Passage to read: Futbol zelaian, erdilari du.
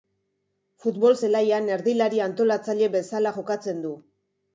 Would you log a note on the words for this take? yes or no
yes